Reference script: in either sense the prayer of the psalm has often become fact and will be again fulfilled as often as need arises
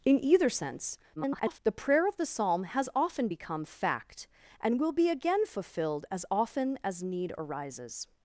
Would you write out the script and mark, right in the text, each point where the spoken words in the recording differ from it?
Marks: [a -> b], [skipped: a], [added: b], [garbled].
in either sense [garbled] the prayer of the psalm has often become fact and will be again fulfilled as often as need arises